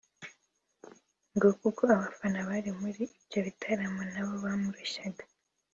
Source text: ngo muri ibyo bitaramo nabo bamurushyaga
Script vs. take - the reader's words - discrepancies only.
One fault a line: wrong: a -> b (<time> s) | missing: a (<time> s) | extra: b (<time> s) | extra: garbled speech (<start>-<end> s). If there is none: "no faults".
extra: kuko abafana bari (1.6 s)